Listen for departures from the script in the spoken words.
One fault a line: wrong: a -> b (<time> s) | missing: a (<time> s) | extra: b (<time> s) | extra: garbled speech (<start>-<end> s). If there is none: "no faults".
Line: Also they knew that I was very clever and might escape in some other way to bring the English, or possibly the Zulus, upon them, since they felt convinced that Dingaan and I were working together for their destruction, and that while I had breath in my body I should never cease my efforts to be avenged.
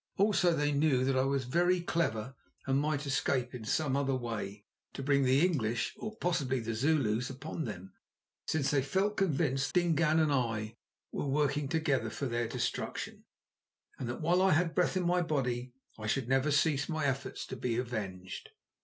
missing: that (9.7 s)